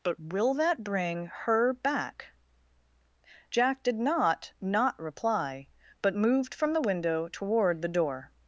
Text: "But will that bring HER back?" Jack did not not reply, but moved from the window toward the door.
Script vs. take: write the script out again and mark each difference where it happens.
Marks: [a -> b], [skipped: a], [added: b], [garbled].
"But will that bring HER back?" Jack did not not reply, but moved from the window toward the door.